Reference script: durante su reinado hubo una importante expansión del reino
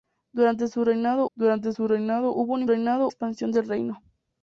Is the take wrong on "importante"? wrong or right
wrong